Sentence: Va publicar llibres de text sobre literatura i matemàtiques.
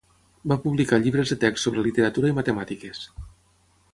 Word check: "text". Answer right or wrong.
right